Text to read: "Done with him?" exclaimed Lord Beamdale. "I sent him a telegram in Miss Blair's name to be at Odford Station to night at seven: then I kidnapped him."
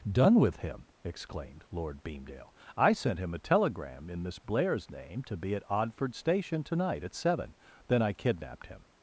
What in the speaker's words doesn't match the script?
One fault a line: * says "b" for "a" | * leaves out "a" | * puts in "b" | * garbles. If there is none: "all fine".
all fine